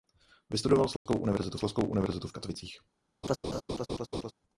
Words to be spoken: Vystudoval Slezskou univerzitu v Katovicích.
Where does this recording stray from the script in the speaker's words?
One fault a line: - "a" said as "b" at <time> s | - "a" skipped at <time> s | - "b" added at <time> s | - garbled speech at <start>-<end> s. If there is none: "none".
- "Slezskou univerzitu" added at 1.5 s